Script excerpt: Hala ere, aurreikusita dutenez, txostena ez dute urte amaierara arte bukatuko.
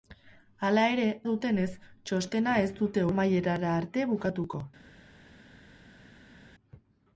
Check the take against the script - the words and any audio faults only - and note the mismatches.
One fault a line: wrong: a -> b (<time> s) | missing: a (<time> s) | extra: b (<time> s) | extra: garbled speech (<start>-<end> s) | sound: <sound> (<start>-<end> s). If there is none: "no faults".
missing: aurreikusita (1.0 s)
missing: urte (3.1 s)